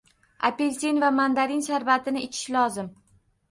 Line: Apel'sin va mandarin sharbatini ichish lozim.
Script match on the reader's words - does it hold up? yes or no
yes